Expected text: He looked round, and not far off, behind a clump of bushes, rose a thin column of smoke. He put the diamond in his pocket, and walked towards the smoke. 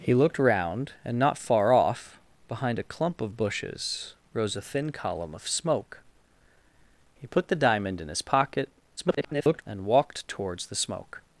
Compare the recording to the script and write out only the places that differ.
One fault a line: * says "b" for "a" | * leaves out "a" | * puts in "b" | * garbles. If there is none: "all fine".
* garbles